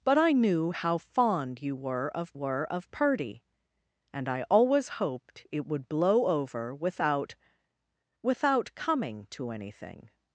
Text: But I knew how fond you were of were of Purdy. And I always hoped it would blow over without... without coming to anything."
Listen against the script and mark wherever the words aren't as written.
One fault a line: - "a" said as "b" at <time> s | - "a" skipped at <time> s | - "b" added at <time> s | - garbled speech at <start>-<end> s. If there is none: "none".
none